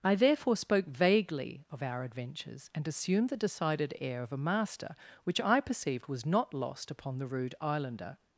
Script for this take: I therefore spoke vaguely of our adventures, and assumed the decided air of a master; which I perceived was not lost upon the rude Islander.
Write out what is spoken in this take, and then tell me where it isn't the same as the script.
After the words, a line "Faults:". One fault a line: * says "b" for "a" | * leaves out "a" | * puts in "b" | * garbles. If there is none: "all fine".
I therefore spoke vaguely of our adventures, and assumed the decided air of a master; which I perceived was not lost upon the rude Islander.
Faults:
all fine